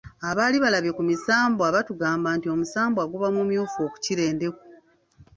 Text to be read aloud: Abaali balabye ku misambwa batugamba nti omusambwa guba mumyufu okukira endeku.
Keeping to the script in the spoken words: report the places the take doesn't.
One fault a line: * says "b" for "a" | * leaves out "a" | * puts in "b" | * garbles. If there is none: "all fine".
all fine